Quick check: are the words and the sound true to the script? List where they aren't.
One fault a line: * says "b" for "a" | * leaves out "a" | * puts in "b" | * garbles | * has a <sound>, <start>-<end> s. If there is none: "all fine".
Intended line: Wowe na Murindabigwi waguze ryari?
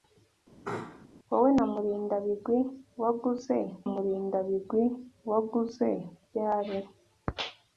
* has a sneeze, 0.6-1.1 s
* puts in "Murindabigwi waguze"